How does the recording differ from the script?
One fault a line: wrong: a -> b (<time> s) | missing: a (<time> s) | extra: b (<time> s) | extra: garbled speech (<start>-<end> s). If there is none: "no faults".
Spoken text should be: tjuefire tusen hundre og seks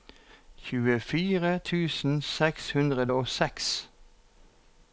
extra: seks (2.3 s)